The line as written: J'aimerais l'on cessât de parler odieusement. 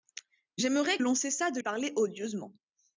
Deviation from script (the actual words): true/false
false